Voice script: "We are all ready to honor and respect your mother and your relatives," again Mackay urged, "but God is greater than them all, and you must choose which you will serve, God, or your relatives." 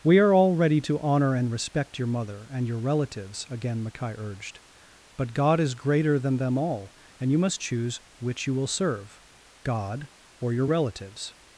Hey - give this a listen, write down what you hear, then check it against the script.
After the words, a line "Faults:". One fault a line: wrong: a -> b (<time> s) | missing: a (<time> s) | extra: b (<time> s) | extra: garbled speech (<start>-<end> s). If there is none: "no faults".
"We are all ready to honor and respect your mother and your relatives," again Mackay urged, "but God is greater than them all, and you must choose which you will serve, God, or your relatives."
Faults:
no faults